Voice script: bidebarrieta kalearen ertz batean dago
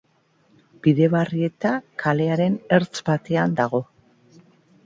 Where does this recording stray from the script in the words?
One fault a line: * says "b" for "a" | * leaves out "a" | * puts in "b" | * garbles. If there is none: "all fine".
all fine